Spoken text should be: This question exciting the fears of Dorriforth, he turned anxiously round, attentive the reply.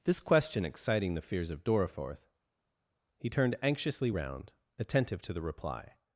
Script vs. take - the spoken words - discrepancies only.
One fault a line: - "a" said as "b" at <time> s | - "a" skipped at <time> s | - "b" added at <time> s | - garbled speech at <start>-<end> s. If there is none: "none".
- "to" added at 5.2 s